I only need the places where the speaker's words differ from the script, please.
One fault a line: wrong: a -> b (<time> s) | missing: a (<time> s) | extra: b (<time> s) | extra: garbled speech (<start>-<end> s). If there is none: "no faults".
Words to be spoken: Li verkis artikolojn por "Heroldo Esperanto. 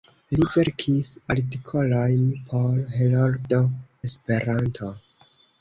no faults